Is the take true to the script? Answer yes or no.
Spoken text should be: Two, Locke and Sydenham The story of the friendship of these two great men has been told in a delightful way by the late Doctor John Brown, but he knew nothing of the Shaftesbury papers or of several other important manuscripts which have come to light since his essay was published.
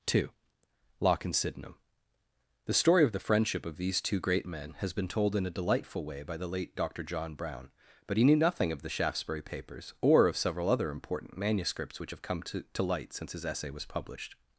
no